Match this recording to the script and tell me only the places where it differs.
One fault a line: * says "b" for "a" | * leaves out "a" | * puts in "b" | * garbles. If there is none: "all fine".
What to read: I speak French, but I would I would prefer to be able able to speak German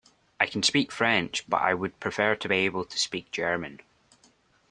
* puts in "can"
* leaves out "I would"
* leaves out "able"